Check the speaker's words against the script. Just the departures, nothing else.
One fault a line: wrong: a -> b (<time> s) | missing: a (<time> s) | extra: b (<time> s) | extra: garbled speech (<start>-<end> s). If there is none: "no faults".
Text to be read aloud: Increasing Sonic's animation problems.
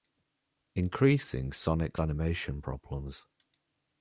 no faults